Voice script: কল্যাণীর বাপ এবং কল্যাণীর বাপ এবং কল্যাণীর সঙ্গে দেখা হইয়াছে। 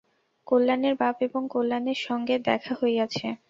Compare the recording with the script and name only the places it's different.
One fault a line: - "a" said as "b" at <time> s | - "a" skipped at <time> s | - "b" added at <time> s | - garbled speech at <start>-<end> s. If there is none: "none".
- "বাপ এবং কল্যাণীর" skipped at 2.0 s